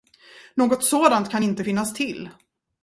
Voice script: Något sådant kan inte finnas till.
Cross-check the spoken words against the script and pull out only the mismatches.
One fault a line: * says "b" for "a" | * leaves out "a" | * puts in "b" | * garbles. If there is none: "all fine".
all fine